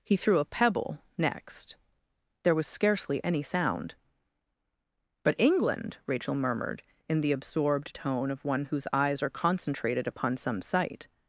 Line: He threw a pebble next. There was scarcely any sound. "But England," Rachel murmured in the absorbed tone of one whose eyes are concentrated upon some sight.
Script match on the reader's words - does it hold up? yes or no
yes